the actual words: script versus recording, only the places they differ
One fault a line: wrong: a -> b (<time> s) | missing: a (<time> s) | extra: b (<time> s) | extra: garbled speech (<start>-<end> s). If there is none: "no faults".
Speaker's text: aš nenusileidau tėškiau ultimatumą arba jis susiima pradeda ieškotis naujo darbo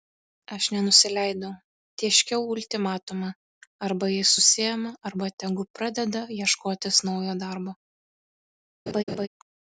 extra: arba tegu (5.1 s)